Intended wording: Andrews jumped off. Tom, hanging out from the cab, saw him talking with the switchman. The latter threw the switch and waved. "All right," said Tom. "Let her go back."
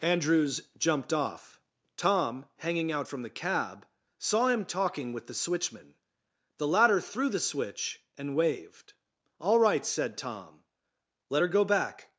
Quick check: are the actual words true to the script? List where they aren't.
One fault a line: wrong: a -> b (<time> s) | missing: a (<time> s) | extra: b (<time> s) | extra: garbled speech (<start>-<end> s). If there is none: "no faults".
no faults